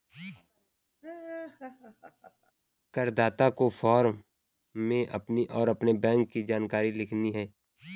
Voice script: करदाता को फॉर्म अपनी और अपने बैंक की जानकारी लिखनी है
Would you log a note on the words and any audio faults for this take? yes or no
yes